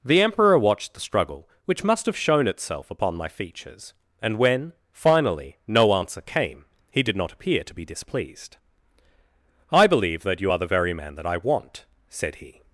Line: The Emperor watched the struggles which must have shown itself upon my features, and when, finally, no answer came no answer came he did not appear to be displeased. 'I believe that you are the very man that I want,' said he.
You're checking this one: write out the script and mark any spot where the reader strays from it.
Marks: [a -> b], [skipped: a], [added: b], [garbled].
The Emperor watched the [struggles -> struggle] which must have shown itself upon my features, and when, finally, no answer came [skipped: no answer came] he did not appear to be displeased. 'I believe that you are the very man that I want,' said he.